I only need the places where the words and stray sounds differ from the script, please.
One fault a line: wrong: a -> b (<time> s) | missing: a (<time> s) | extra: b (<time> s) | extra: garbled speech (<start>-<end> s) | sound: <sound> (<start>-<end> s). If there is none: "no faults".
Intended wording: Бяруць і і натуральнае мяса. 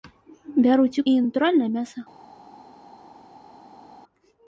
no faults